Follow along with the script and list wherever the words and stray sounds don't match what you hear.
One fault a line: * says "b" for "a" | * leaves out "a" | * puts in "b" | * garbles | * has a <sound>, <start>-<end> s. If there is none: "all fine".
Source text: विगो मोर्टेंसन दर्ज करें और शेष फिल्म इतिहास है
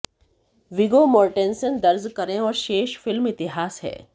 all fine